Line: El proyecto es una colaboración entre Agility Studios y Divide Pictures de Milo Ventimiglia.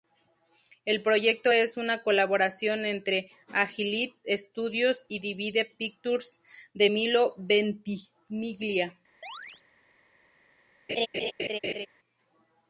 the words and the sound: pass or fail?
fail